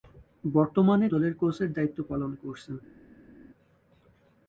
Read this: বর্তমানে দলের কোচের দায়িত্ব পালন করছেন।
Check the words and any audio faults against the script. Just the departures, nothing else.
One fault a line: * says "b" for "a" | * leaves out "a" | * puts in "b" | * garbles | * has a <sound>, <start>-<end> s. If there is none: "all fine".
all fine